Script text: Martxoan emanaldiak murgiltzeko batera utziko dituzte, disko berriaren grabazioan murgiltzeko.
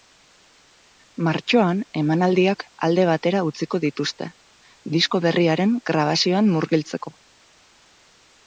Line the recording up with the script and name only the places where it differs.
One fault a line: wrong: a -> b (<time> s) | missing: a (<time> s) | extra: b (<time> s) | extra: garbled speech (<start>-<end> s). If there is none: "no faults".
wrong: murgiltzeko -> alde (2.9 s)